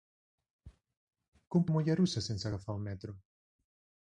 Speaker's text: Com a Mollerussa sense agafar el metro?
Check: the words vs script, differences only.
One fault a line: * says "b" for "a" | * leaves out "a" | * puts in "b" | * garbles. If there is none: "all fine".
all fine